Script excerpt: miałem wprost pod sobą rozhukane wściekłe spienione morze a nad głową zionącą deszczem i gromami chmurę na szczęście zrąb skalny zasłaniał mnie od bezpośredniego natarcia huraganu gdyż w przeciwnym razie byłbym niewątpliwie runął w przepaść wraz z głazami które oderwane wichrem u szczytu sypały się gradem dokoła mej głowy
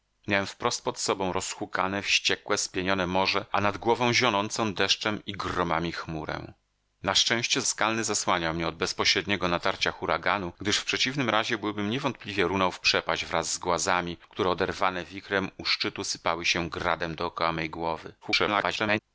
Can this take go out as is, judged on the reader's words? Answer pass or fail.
fail